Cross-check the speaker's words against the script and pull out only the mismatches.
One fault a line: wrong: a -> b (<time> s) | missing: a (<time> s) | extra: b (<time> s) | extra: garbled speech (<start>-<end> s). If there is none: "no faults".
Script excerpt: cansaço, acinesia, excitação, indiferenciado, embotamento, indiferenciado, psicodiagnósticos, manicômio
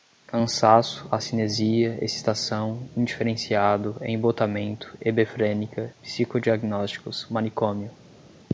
wrong: indiferenciado -> hebefrênica (5.0 s)